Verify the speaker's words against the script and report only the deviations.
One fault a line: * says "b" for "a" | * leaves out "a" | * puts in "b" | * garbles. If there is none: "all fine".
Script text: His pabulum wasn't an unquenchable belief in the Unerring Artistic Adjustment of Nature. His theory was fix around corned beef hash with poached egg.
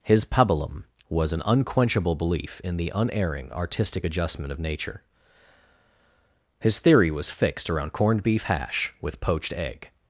* says "was" for "wasn't"
* says "fixed" for "fix"